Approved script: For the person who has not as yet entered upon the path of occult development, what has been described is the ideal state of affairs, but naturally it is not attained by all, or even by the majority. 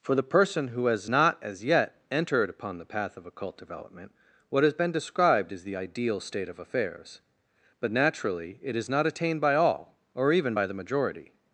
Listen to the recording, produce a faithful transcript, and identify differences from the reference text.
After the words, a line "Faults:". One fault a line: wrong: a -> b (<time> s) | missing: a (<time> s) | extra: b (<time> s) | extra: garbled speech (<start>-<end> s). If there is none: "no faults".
For the person who has not as yet entered upon the path of occult development, what has been described is the ideal state of affairs, but naturally it is not attained by all, or even by the majority.
Faults:
no faults